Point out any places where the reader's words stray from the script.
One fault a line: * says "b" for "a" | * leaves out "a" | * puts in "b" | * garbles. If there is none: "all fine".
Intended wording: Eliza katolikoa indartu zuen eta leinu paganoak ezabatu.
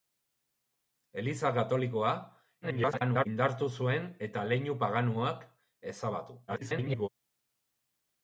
* garbles
* garbles